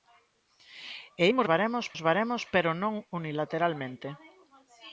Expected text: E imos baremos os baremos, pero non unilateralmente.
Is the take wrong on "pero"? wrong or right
right